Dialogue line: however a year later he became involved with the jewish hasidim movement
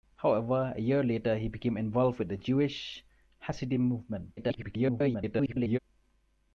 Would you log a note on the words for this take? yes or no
yes